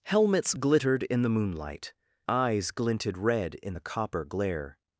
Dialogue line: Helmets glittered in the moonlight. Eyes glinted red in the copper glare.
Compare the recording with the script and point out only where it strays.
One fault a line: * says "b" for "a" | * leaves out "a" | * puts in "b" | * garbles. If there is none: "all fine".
all fine